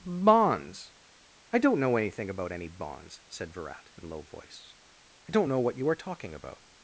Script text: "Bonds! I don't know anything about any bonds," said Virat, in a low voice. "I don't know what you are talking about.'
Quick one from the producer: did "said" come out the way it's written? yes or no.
yes